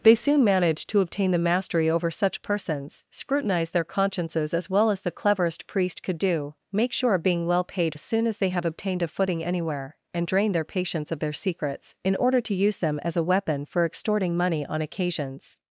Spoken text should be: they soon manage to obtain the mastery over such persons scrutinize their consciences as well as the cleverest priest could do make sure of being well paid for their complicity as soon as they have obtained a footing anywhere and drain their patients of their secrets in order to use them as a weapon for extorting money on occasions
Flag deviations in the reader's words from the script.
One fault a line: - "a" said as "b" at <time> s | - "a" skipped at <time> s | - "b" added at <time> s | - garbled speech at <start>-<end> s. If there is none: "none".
- "for their complicity" skipped at 7.9 s